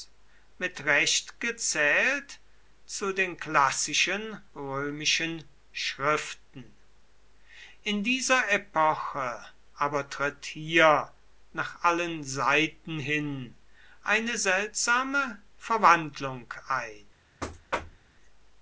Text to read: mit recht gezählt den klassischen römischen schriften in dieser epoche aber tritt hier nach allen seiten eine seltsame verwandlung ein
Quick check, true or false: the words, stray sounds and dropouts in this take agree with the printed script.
false